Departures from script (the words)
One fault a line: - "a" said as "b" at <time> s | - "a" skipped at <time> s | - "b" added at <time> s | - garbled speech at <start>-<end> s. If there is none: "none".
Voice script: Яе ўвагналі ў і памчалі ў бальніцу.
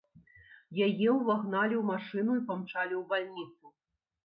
- "машыну" added at 1.9 s